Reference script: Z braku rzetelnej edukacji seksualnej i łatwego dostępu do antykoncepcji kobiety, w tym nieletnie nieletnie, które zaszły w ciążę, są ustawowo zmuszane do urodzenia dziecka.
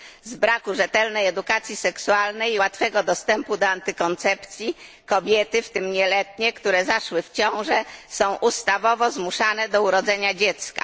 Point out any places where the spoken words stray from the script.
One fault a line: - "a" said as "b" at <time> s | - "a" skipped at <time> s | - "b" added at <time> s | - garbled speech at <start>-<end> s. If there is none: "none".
- "nieletnie" skipped at 6.5 s